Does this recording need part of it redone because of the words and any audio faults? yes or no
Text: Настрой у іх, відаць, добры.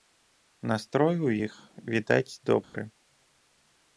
yes